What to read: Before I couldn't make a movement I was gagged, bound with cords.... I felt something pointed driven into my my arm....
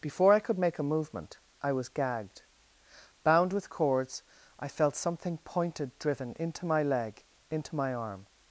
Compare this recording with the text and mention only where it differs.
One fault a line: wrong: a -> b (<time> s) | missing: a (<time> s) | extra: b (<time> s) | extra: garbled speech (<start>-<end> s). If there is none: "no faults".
wrong: couldn't -> could (0.4 s)
extra: leg into (6.8 s)